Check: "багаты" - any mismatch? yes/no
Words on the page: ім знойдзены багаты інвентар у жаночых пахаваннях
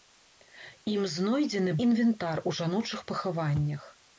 yes